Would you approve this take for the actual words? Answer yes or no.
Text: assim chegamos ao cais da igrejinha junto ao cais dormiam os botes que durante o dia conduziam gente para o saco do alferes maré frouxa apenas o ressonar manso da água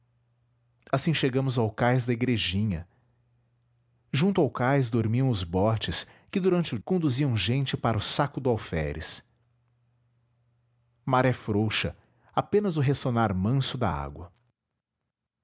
no